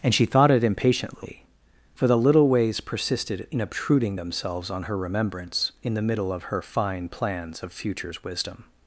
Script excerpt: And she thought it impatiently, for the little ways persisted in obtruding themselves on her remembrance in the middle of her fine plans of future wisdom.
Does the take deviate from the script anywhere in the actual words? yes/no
yes